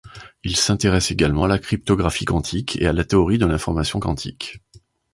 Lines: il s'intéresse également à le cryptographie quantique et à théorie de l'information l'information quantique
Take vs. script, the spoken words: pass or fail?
fail